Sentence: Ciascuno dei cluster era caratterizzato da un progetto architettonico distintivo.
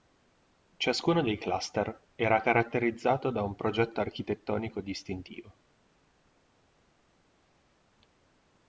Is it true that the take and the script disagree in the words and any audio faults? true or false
false